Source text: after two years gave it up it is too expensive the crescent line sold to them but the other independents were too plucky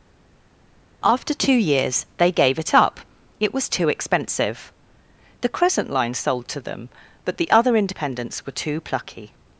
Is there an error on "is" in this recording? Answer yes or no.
yes